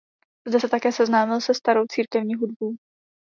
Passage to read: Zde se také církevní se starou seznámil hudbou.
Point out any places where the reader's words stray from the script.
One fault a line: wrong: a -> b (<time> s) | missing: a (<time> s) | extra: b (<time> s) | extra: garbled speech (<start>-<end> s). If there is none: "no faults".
wrong: církevní -> seznámil (0.9 s)
wrong: seznámil -> církevní (1.9 s)